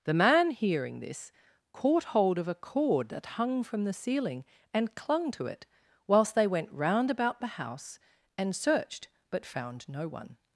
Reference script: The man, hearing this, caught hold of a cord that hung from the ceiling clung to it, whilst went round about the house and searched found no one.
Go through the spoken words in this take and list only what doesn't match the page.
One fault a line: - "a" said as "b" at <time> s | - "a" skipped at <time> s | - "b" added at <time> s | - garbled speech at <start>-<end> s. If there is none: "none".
- "and" added at 4.7 s
- "they" added at 6.3 s
- "but" added at 9.3 s